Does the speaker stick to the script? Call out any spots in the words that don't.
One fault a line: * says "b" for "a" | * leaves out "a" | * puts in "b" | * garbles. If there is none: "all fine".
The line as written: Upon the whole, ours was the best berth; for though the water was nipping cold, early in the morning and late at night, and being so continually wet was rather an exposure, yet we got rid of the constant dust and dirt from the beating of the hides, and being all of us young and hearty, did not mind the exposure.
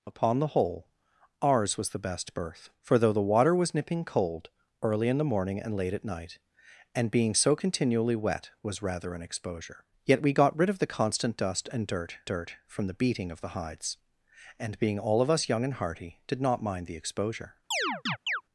* puts in "dirt"